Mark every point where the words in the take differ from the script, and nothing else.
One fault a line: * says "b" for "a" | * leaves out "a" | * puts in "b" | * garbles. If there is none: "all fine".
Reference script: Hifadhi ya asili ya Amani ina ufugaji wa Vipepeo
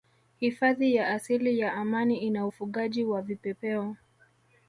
all fine